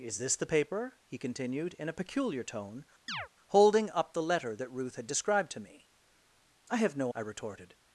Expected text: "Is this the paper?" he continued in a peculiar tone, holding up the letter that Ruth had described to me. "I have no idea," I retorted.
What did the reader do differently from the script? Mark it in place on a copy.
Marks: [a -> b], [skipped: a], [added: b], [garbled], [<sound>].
"Is this the paper?" he continued in a peculiar tone, [chirp] holding up the letter that Ruth had described to me. "I have no [skipped: idea,"] I retorted.